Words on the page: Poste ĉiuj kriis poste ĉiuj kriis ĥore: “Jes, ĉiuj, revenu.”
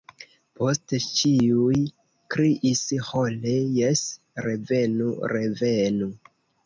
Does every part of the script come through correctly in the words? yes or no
no